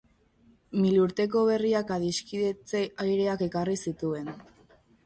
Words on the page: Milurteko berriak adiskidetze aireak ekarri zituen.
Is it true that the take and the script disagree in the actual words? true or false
false